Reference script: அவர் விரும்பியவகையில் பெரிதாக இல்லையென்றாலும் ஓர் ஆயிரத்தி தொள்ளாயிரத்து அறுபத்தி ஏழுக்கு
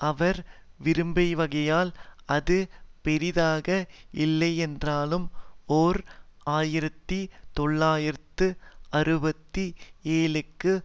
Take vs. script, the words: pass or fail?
fail